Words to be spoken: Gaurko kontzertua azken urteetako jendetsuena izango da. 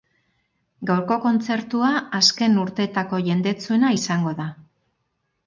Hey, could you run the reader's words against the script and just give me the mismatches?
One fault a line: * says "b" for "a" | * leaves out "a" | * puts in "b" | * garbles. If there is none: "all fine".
all fine